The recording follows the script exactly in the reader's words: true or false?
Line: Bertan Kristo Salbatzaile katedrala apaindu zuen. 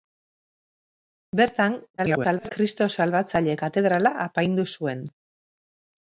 false